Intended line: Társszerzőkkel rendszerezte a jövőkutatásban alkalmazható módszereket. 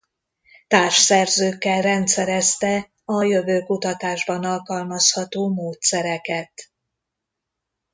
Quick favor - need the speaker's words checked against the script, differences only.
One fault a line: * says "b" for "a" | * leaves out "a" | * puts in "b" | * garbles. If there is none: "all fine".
all fine